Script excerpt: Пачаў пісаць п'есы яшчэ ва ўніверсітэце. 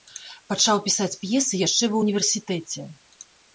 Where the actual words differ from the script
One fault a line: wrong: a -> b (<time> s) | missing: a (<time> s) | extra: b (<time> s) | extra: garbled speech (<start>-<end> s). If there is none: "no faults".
no faults